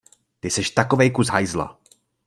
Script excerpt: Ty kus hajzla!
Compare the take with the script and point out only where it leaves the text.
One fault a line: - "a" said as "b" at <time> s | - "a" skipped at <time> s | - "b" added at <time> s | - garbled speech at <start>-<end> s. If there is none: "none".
- "seš takovej" added at 0.5 s